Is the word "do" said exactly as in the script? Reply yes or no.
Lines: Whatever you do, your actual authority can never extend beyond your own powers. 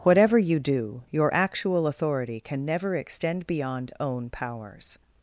yes